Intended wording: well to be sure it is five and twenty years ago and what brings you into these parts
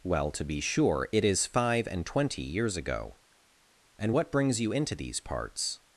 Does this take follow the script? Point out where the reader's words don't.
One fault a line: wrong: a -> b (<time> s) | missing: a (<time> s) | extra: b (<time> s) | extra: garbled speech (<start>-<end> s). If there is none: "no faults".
no faults